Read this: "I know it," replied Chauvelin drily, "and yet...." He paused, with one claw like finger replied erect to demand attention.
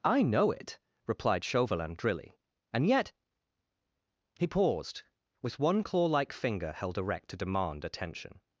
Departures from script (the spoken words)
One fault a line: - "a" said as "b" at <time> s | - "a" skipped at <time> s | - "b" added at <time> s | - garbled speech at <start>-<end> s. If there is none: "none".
- "replied" said as "held" at 6.7 s